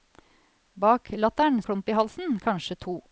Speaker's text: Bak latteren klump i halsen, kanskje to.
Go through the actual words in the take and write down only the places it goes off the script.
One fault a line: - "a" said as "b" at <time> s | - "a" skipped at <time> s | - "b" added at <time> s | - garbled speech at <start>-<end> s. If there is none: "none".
none